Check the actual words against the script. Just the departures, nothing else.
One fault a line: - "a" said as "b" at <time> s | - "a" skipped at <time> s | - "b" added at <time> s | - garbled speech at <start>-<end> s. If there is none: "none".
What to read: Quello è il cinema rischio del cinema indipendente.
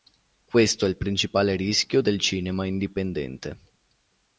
- "Quello" said as "Questo" at 0.5 s
- "cinema" said as "principale" at 1.0 s